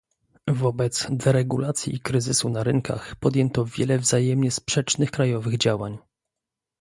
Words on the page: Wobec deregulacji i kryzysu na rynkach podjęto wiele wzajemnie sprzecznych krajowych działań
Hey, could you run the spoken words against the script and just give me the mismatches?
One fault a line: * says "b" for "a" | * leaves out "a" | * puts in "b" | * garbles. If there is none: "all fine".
all fine